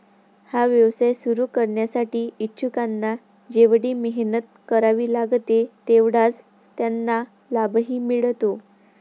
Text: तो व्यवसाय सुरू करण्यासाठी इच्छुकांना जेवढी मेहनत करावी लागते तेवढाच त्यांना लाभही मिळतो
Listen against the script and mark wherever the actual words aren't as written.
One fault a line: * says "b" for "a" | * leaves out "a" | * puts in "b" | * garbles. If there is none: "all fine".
* says "हा" for "तो"